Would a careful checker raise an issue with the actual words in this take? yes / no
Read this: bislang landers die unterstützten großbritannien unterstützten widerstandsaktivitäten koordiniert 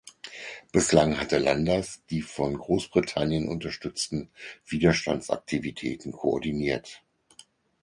yes